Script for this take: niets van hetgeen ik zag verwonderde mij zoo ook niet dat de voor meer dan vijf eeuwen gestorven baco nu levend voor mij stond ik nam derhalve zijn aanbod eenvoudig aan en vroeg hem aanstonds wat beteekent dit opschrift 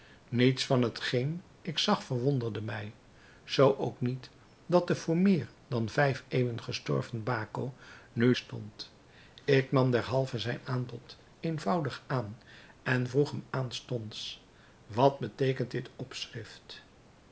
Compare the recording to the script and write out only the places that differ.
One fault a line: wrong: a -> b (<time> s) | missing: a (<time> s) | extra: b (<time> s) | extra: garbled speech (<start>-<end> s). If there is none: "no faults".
missing: levend voor mij (8.4 s)